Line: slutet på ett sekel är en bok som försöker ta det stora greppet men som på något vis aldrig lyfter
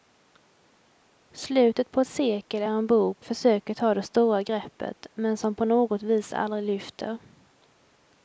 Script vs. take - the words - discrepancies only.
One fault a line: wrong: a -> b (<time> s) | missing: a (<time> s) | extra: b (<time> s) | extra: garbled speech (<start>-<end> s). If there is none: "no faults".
missing: som (3.2 s)